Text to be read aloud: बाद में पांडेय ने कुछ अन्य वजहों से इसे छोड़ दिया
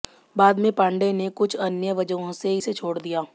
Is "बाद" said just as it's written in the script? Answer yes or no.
yes